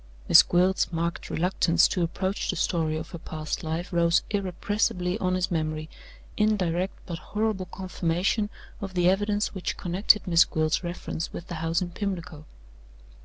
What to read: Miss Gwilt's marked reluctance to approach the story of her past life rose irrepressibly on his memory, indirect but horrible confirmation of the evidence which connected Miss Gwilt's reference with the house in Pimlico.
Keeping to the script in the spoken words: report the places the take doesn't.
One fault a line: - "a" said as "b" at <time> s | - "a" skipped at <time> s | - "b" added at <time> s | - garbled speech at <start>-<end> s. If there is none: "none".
none